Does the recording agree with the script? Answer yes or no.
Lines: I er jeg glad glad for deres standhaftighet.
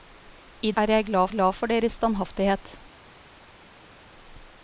yes